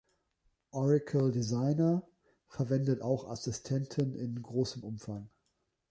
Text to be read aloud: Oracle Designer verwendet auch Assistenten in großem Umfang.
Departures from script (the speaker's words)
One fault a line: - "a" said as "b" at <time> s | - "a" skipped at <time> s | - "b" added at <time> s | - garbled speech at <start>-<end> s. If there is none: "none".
none